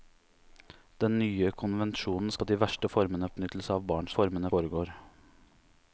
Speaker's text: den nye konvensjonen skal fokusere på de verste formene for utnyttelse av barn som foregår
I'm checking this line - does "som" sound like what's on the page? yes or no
no